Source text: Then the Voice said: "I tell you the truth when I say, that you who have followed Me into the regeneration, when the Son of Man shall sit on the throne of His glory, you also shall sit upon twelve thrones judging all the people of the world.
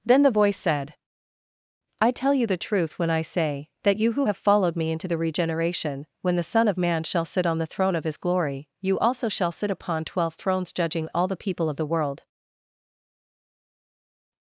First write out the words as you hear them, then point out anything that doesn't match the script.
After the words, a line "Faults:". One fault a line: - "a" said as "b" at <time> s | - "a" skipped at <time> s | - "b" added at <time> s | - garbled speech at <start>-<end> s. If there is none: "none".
Then the Voice said: "I tell you the truth when I say, that you who have followed Me into the regeneration, when the Son of Man shall sit on the throne of His glory, you also shall sit upon twelve thrones judging all the people of the world.
Faults:
none